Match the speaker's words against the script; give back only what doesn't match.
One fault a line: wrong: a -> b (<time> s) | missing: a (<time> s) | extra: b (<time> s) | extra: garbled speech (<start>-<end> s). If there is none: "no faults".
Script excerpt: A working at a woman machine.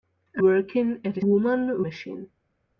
no faults